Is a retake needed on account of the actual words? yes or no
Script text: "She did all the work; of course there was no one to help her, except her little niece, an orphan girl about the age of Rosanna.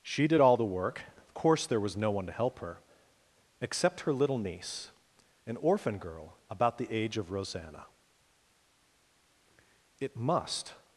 yes